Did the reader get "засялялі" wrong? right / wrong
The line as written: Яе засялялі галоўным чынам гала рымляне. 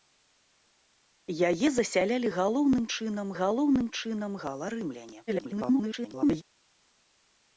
right